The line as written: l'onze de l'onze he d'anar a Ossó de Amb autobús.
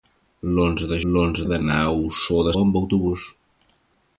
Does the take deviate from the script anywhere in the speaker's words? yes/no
no